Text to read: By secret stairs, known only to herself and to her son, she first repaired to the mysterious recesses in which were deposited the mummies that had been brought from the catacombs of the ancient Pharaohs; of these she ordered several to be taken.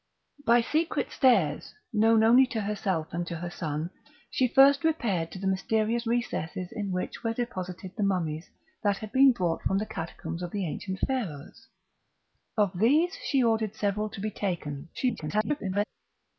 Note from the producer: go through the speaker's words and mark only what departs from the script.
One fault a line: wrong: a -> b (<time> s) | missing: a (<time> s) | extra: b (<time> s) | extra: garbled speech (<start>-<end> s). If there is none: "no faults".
extra: garbled speech (14.9-15.8 s)